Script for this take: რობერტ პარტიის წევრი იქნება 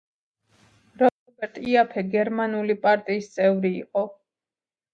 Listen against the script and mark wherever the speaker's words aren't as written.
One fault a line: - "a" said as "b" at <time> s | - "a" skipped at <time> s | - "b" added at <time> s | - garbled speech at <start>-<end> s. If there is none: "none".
- "იაფე გერმანული" added at 1.7 s
- "იქნება" said as "იყო" at 3.8 s